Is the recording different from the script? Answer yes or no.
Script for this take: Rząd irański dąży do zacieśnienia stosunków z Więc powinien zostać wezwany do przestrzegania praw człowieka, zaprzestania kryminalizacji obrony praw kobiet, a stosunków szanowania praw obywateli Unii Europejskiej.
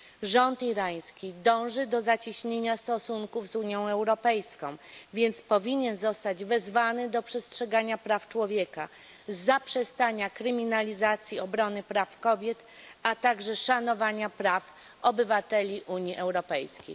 yes